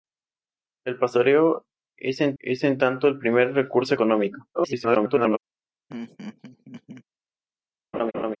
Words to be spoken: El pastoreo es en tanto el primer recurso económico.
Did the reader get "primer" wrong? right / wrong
right